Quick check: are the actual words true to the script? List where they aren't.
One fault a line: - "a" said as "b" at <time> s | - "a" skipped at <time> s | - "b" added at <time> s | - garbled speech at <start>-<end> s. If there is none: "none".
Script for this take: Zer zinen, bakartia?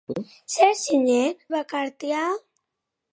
none